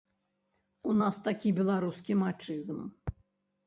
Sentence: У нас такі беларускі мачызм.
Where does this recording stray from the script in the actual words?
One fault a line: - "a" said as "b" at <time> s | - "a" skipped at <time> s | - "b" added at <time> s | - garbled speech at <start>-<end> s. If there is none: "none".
none